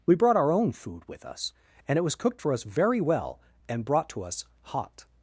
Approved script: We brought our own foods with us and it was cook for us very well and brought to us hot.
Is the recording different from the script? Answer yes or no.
yes